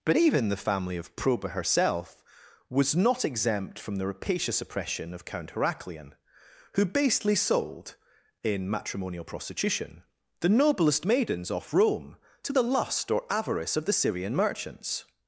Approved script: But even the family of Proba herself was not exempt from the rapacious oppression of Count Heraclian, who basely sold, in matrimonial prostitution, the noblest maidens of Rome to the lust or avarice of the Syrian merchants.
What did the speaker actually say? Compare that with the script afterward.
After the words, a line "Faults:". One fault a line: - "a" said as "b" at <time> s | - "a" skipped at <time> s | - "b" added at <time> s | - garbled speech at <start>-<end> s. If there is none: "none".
But even the family of Proba herself was not exempt from the rapacious oppression of Count Heraclian, who basely sold, in matrimonial prostitution, the noblest maidens off Rome to the lust or avarice of the Syrian merchants.
Faults:
- "of" said as "off" at 11.5 s